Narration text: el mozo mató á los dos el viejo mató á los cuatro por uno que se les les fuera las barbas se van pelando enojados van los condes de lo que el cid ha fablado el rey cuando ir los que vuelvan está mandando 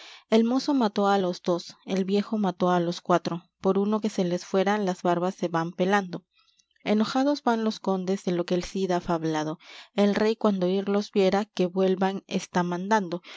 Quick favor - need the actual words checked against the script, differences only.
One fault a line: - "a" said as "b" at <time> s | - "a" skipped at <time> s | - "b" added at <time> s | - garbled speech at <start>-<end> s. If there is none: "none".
- "les" skipped at 4.4 s
- "viera" added at 11.1 s